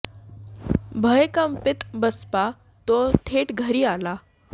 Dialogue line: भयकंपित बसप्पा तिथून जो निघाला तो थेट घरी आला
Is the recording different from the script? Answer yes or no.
yes